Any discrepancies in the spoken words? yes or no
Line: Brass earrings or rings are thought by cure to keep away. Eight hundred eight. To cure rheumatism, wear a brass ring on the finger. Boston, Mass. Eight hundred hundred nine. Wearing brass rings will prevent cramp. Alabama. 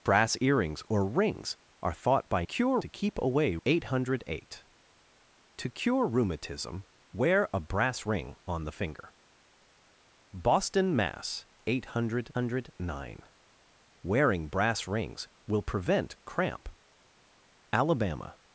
no